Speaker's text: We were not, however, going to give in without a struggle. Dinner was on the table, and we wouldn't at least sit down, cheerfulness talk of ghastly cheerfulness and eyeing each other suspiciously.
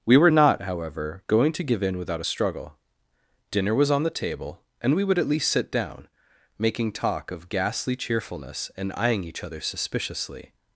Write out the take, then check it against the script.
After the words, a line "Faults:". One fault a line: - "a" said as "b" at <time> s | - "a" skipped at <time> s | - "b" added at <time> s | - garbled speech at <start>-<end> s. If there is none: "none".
We were not, however, going to give in without a struggle. Dinner was on the table, and we would at least sit down, making talk of ghastly cheerfulness and eyeing each other suspiciously.
Faults:
- "wouldn't" said as "would" at 5.0 s
- "cheerfulness" said as "making" at 6.6 s